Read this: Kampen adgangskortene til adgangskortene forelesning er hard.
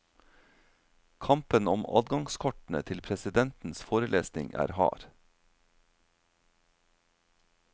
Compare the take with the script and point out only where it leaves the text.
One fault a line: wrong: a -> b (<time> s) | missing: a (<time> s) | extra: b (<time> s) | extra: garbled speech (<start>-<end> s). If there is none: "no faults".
extra: om (1.7 s)
wrong: adgangskortene -> presidentens (3.1 s)